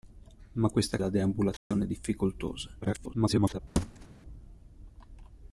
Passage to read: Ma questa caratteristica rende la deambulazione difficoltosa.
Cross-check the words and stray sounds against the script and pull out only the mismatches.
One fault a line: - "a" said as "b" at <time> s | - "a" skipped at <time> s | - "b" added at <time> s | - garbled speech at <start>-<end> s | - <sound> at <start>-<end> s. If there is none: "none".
- "caratteristica rende" skipped at 1.0 s
- dropout at 1.6-1.7 s
- garbled speech at 2.8-3.6 s
- thud at 3.8-4.1 s